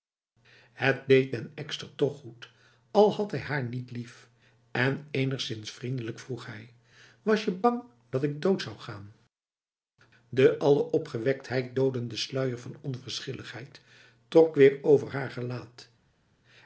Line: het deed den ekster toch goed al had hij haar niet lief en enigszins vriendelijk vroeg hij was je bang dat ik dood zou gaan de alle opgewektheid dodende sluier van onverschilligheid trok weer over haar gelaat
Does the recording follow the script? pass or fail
pass